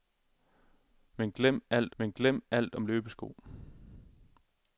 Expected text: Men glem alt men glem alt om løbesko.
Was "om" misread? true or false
false